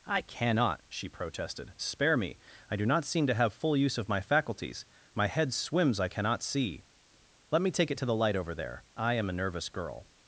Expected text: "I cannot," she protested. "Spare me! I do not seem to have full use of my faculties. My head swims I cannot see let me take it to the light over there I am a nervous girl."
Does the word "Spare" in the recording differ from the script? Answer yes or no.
no